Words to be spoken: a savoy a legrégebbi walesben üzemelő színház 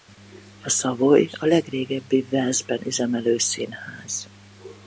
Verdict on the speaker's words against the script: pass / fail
pass